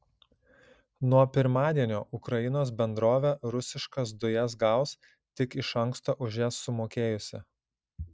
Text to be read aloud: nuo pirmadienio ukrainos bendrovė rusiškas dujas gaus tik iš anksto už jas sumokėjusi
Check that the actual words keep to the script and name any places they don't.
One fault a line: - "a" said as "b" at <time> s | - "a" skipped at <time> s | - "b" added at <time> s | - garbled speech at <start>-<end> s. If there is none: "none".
none